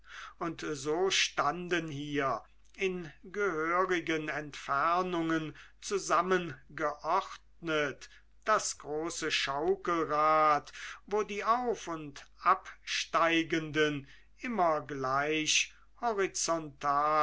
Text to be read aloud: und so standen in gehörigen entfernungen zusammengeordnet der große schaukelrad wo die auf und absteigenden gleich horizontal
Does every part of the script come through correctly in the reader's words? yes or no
no